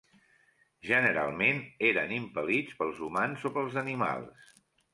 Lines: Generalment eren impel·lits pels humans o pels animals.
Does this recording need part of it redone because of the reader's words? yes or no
no